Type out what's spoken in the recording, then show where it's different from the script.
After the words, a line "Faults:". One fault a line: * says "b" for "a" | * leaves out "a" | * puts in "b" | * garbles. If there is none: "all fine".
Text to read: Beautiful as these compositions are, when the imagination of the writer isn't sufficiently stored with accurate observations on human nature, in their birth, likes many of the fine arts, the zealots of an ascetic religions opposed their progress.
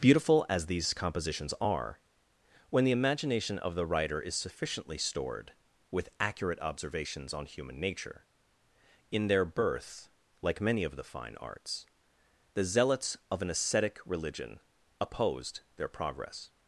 Beautiful as these compositions are, when the imagination of the writer is sufficiently stored with accurate observations on human nature, in their birth, like many of the fine arts, the zealots of an ascetic religion opposed their progress.
Faults:
* says "is" for "isn't"
* says "like" for "likes"
* says "religion" for "religions"